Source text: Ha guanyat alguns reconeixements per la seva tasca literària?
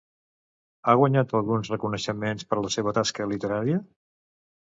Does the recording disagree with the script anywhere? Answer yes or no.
no